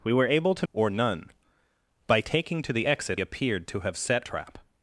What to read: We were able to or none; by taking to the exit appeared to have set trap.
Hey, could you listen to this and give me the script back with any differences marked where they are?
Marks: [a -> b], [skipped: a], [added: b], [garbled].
We were able to or none; by taking to the exit appeared to have set trap.